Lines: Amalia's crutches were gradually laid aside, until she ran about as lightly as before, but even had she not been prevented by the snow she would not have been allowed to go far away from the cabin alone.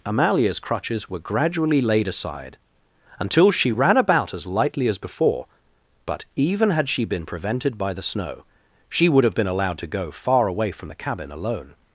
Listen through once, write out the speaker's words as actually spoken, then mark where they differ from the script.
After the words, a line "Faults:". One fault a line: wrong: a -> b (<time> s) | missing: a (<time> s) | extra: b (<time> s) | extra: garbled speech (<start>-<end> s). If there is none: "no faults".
Amalia's crutches were gradually laid aside, until she ran about as lightly as before, but even had she been prevented by the snow she would have been allowed to go far away from the cabin alone.
Faults:
missing: not (7.0 s)
missing: not (9.2 s)